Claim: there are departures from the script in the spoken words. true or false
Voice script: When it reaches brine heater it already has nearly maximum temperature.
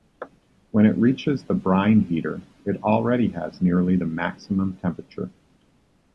true